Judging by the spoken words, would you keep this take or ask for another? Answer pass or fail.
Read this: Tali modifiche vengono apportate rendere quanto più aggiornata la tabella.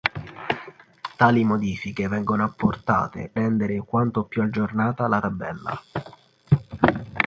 pass